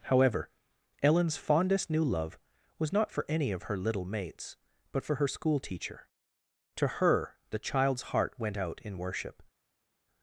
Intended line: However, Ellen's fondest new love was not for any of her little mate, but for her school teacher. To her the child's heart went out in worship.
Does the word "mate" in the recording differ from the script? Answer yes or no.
yes